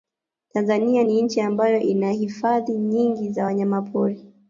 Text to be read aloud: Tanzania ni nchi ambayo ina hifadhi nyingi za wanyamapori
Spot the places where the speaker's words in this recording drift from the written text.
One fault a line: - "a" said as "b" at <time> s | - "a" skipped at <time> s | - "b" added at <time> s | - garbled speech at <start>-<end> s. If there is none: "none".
none